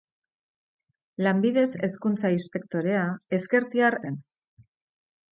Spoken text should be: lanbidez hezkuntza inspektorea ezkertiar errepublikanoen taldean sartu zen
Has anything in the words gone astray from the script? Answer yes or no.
yes